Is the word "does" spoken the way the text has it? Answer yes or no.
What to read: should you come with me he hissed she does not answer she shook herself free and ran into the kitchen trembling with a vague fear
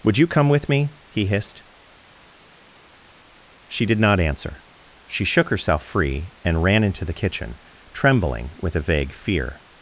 no